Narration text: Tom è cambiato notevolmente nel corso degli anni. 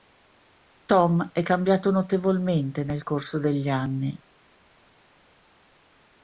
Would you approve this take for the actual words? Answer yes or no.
yes